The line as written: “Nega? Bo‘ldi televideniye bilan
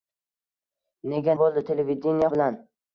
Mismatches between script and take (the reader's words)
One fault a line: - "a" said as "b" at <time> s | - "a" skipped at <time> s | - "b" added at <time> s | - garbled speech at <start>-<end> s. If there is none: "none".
none